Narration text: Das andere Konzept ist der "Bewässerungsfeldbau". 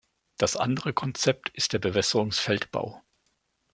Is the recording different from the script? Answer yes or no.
no